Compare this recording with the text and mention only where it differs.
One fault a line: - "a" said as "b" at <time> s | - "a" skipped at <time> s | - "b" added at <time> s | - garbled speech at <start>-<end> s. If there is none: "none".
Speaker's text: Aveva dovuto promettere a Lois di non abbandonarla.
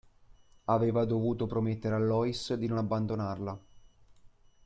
none